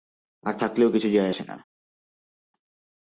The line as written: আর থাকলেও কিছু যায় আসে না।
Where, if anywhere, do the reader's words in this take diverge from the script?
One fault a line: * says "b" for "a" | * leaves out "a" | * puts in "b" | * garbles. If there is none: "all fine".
all fine